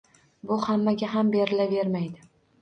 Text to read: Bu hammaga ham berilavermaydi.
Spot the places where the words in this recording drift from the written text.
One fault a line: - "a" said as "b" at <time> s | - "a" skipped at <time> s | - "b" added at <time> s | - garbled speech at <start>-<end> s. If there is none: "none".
none